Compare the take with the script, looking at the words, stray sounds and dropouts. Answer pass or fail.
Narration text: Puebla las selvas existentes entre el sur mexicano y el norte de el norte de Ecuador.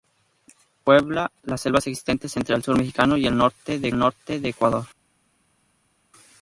pass